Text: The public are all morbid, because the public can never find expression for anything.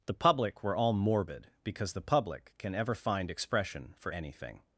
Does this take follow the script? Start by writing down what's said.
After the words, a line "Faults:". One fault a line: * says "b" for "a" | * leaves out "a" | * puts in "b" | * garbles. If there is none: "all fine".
The public were all morbid, because the public can ever find expression for anything.
Faults:
* says "were" for "are"
* says "ever" for "never"